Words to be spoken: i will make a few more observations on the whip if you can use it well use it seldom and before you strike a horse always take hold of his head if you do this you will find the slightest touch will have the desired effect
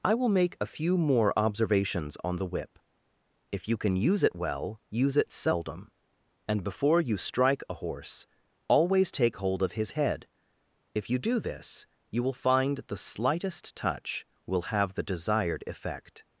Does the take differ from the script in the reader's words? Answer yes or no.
no